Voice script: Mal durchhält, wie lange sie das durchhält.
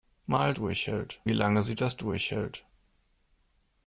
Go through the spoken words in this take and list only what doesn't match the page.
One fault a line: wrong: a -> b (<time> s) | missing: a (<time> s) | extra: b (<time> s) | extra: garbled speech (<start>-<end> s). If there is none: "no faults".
no faults